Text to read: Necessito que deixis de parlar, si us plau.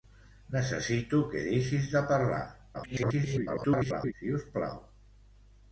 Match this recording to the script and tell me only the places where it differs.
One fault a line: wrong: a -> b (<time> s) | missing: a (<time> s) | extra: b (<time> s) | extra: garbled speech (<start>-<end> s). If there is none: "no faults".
extra: garbled speech (2.7-4.1 s)